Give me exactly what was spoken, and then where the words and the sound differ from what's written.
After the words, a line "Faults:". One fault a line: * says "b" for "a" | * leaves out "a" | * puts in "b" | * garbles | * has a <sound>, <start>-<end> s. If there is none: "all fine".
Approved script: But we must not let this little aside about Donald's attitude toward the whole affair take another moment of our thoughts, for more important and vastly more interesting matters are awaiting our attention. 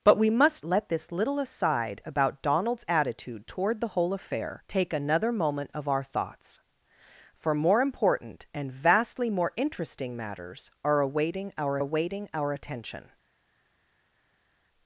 But we must let this little aside about Donald's attitude toward the whole affair take another moment of our thoughts, for more important and vastly more interesting matters are awaiting our awaiting our attention.
Faults:
* leaves out "not"
* puts in "awaiting our"